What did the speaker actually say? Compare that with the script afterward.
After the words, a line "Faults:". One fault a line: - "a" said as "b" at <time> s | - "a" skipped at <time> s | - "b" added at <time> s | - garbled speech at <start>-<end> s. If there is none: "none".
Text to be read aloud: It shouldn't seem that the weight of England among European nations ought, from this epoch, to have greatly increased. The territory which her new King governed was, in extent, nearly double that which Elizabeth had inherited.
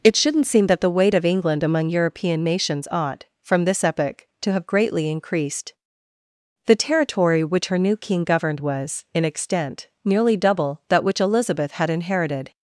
It shouldn't seem that the weight of England among European nations ought, from this epoch, to have greatly increased. The territory which her new King governed was, in extent, nearly double that which Elizabeth had inherited.
Faults:
none